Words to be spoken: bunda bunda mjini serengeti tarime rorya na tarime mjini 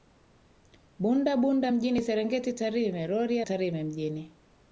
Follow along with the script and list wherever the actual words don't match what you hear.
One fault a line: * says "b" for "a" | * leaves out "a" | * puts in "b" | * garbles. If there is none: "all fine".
* leaves out "na"